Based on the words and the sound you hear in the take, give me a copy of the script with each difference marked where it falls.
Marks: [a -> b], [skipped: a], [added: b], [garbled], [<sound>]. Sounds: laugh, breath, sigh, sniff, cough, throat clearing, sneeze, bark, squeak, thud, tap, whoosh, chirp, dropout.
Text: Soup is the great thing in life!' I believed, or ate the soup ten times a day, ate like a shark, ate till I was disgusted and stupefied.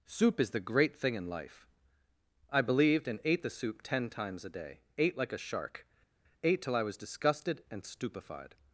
Soup is the great thing in life!' I believed, [or -> and] ate the soup ten times a day, ate like a shark, ate till I was disgusted and stupefied.